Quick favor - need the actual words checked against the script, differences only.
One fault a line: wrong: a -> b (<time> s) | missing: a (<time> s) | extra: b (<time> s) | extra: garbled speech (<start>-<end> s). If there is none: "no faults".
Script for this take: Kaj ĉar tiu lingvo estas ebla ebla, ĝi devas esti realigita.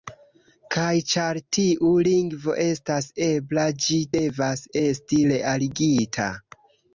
missing: ebla (3.7 s)